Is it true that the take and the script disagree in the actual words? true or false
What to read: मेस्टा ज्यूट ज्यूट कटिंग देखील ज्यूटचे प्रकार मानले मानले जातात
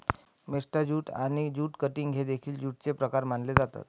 true